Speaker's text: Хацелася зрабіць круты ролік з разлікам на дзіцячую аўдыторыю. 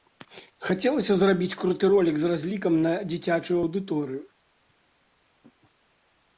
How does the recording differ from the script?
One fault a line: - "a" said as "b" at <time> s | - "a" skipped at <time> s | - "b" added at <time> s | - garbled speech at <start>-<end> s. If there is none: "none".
none